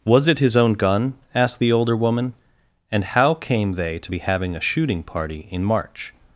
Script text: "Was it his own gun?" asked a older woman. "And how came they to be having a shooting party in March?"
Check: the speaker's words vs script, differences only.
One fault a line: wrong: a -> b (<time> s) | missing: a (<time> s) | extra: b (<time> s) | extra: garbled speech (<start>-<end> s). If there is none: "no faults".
wrong: a -> the (1.6 s)